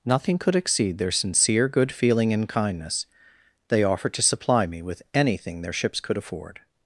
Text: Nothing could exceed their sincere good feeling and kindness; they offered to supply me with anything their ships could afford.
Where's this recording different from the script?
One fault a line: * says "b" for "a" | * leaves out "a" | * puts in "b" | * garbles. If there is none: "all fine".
all fine